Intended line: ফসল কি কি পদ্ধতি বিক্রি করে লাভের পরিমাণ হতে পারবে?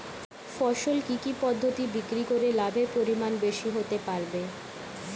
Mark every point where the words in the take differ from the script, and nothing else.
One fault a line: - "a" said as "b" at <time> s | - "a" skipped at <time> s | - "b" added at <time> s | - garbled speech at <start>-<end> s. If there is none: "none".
- "বেশি" added at 3.4 s